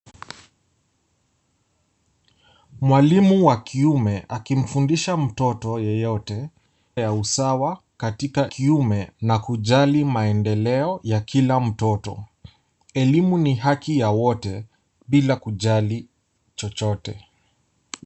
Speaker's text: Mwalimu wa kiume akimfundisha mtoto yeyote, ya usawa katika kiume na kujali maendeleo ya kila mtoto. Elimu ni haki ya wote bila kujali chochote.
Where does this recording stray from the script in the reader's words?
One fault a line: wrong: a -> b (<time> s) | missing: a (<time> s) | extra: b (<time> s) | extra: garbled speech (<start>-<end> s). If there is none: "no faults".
no faults